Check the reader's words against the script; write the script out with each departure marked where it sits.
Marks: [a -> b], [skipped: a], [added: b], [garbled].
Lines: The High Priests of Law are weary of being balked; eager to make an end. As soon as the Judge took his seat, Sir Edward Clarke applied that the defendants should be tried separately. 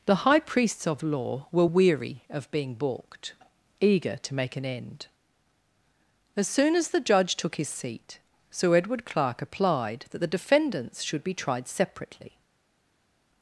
The High Priests of Law [are -> were] weary of being balked; eager to make an end. As soon as the Judge took his seat, Sir Edward Clarke applied that the defendants should be tried separately.